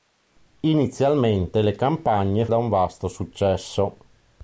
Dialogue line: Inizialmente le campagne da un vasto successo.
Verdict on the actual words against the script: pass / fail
pass